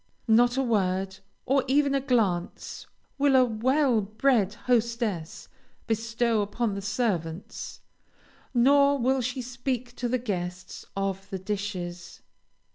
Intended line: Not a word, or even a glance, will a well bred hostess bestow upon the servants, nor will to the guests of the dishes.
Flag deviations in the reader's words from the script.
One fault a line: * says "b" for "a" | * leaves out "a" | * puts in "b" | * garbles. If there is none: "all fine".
* puts in "she speak"